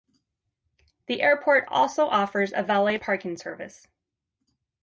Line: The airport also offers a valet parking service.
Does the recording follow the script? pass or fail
pass